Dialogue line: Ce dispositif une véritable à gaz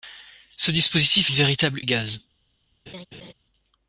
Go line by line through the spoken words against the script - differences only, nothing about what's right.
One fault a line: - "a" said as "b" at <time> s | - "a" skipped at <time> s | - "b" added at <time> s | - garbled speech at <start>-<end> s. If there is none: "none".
none